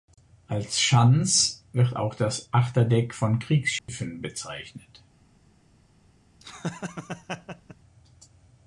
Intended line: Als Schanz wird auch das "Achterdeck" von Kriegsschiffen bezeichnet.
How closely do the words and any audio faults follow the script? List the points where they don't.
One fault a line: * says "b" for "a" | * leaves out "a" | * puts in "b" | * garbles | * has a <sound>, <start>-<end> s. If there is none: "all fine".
* has a dropout, 3.8-3.9 s
* has a laugh, 6.4-7.8 s